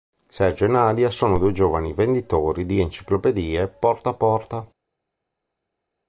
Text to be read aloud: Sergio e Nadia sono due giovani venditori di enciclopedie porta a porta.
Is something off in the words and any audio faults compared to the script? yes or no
no